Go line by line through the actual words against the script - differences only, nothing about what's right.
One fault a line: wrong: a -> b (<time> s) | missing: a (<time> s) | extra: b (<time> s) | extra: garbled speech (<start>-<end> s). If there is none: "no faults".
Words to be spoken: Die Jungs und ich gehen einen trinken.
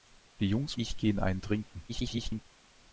missing: und (0.8 s)
extra: garbled speech (1.9-2.5 s)